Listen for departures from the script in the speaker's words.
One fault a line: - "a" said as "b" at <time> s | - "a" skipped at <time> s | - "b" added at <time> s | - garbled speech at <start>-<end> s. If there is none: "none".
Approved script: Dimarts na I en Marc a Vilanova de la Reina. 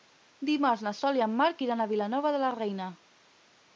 - "Sol" added at 1.0 s
- "iran" added at 1.6 s